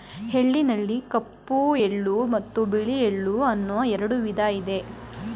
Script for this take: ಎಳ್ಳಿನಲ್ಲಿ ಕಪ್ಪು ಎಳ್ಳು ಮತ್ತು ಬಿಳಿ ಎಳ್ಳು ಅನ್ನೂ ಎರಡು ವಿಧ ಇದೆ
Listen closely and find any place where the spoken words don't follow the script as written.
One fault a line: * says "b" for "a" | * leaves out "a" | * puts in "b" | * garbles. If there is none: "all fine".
all fine